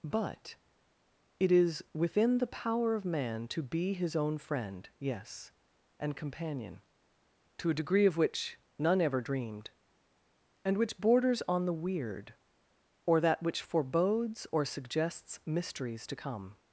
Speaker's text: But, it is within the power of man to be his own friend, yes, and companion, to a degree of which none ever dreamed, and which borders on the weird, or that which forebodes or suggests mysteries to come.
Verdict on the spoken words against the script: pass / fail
pass